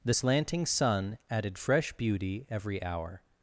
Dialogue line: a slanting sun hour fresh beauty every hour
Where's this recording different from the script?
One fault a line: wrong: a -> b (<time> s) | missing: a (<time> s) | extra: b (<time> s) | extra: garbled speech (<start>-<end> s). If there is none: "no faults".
wrong: a -> the (0.0 s)
wrong: hour -> added (1.3 s)